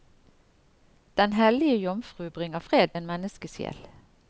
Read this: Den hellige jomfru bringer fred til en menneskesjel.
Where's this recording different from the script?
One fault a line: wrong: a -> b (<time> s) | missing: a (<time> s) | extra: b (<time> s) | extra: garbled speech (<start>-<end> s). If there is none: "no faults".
missing: til (2.9 s)